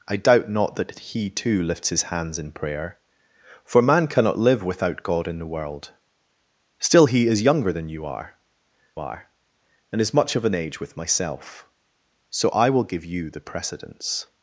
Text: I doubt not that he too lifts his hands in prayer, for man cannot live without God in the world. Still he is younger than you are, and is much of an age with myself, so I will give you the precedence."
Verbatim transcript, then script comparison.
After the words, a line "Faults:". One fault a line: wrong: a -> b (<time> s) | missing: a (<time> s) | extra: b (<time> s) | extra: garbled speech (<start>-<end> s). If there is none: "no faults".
I doubt not that he too lifts his hands in prayer, for man cannot live without God in the world. Still he is younger than you are are, and is much of an age with myself, so I will give you the precedence."
Faults:
extra: are (9.0 s)